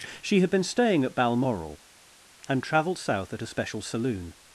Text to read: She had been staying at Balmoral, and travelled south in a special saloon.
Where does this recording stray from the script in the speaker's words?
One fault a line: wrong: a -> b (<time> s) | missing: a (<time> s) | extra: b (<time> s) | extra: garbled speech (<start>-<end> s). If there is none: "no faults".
wrong: in -> at (3.3 s)